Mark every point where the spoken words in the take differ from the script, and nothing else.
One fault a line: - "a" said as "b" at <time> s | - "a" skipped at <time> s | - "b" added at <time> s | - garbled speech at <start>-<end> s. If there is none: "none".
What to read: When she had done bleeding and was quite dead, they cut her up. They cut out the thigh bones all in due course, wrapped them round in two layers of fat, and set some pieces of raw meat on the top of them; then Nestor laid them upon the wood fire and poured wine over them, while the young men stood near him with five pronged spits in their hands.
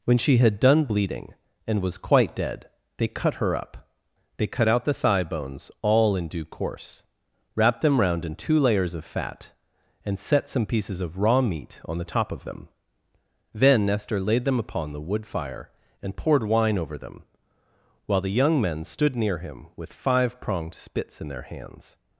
none